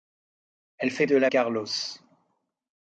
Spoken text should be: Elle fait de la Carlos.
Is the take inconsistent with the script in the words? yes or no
no